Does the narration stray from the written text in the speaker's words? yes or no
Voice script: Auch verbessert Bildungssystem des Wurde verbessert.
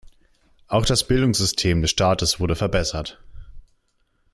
yes